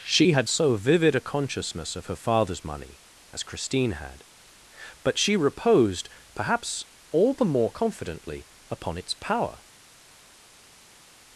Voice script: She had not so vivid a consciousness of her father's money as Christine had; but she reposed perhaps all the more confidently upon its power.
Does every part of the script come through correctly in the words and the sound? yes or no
no